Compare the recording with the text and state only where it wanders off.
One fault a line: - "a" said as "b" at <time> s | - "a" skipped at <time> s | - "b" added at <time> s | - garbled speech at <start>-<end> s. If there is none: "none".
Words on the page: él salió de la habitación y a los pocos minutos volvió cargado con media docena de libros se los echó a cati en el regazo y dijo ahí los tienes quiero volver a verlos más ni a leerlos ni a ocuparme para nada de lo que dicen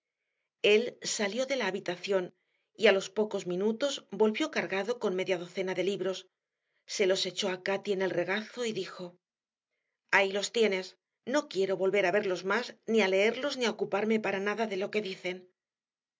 - "no" added at 11.2 s